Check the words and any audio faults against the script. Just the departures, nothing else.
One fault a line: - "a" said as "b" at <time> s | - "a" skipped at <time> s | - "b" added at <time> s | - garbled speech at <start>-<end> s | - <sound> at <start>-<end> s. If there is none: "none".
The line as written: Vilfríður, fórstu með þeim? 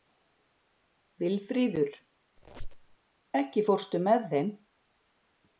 - squeak at 2.4-3.0 s
- "ekki" added at 3.4 s